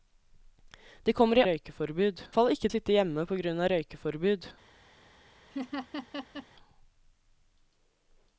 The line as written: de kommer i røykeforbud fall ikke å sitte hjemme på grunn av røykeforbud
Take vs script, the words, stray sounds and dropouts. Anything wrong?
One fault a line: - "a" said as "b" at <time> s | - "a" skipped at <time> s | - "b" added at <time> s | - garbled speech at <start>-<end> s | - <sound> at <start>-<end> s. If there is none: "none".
- laugh at 5.5-6.5 s